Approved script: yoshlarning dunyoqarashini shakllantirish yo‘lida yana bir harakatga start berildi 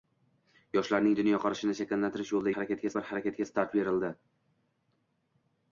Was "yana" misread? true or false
true